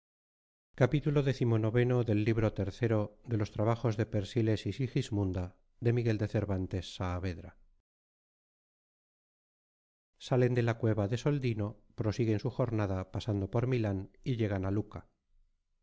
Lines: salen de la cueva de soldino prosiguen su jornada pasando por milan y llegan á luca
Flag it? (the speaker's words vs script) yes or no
no